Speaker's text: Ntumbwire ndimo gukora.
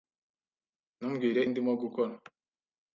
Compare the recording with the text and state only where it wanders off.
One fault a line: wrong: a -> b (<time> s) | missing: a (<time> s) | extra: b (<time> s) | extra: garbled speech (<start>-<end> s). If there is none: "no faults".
no faults